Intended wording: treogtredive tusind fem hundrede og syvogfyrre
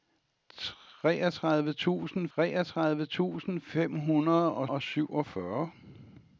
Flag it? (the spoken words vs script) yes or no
yes